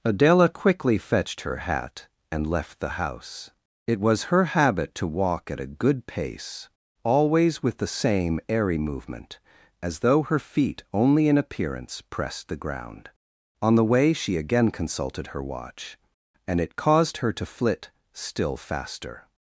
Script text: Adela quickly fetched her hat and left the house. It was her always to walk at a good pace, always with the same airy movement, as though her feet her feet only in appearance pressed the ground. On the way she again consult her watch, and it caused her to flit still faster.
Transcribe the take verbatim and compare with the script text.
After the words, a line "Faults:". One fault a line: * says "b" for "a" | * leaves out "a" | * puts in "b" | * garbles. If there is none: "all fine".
Adela quickly fetched her hat and left the house. It was her habit to walk at a good pace, always with the same airy movement, as though her feet only in appearance pressed the ground. On the way she again consulted her watch, and it caused her to flit still faster.
Faults:
* says "habit" for "always"
* leaves out "her feet"
* says "consulted" for "consult"